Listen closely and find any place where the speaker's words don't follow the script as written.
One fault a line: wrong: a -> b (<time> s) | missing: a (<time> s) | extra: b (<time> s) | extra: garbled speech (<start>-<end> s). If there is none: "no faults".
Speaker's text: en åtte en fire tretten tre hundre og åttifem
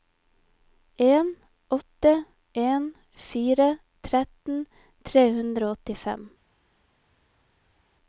no faults